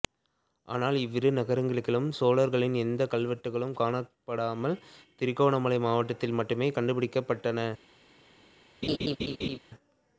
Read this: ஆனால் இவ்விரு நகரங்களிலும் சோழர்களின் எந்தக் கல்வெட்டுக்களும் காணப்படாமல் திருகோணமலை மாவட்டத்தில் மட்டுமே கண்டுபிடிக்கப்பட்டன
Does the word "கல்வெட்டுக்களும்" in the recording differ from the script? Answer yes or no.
no